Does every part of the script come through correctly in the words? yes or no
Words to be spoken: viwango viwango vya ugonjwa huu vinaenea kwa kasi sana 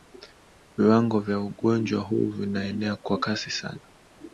no